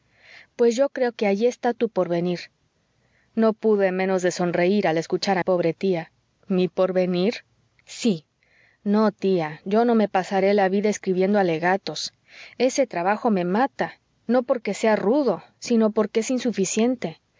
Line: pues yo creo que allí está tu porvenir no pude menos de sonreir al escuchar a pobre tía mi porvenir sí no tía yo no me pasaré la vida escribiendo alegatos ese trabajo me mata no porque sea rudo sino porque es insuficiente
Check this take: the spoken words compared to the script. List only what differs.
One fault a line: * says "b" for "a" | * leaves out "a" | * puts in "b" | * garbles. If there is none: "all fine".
all fine